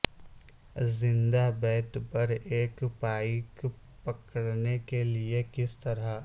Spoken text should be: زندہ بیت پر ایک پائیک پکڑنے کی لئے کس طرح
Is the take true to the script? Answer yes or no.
no